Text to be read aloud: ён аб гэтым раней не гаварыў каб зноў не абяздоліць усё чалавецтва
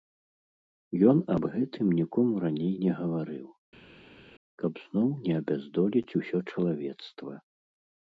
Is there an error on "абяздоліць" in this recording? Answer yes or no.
no